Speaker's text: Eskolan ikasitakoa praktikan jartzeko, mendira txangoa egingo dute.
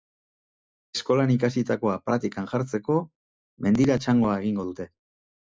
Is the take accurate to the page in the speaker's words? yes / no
yes